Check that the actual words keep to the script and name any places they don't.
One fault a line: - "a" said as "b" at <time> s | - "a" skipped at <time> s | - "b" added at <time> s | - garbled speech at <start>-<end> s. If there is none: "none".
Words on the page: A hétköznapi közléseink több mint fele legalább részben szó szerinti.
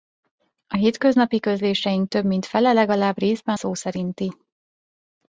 none